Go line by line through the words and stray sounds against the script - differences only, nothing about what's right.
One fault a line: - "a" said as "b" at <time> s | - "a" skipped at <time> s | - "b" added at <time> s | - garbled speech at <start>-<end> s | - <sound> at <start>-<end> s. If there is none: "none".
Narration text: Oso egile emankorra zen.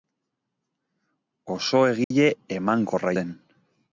- dropout at 2.0-2.1 s